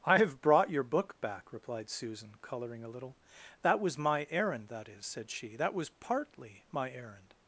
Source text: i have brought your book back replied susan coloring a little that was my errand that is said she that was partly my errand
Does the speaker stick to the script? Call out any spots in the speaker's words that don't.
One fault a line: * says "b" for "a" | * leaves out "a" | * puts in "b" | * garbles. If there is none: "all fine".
all fine